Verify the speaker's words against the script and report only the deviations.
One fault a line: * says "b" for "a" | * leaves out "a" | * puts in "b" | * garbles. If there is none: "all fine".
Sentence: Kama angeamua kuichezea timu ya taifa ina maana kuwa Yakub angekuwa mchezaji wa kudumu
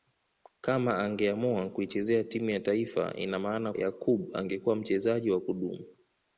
* leaves out "kuwa"